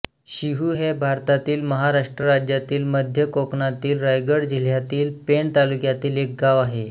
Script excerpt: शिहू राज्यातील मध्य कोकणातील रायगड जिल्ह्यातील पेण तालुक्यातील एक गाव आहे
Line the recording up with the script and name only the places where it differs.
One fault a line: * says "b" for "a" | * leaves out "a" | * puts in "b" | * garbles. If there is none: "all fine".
* puts in "हे भारतातील महाराष्ट्र"